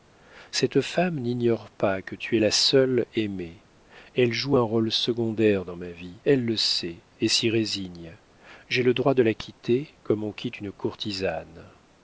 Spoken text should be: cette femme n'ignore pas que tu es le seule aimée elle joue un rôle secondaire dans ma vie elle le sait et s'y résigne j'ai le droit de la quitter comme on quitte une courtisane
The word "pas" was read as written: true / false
true